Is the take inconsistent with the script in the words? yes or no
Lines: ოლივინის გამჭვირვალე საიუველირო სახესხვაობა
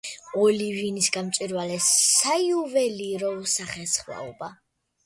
no